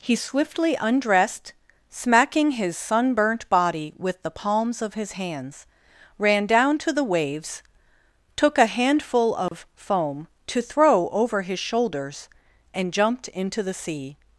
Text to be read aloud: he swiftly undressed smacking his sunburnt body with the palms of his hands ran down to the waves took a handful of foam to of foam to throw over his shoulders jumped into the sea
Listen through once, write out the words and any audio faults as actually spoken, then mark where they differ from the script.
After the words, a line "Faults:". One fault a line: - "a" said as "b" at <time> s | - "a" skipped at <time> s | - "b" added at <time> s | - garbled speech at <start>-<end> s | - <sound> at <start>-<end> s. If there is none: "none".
he swiftly undressed smacking his sunburnt body with the palms of his hands ran down to the waves took a handful of foam to throw over his shoulders and jumped into the sea
Faults:
- dropout at 9.5-9.5 s
- "of foam to" skipped at 10.6 s
- "and" added at 12.7 s